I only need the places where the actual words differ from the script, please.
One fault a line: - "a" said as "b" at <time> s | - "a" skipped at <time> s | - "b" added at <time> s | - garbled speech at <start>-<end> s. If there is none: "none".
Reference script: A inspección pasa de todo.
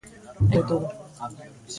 - "inspección pasa" skipped at 0.5 s